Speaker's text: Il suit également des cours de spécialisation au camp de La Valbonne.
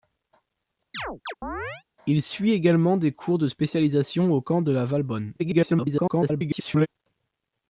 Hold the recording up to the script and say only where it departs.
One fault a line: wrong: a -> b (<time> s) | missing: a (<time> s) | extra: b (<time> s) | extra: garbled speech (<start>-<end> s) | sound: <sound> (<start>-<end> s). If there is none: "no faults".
sound: chirp (0.9-1.8 s)
extra: garbled speech (5.4-6.9 s)